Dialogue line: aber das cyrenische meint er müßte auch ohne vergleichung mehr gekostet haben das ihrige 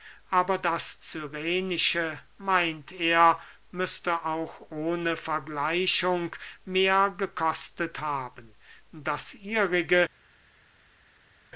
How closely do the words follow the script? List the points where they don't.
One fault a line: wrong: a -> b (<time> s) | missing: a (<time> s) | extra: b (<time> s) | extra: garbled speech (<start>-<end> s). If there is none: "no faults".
no faults